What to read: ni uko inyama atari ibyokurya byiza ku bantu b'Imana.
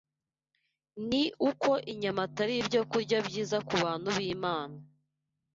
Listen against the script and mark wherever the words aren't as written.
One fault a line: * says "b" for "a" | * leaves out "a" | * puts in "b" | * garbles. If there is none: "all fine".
all fine